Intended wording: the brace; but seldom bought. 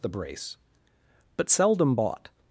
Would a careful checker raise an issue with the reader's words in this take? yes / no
no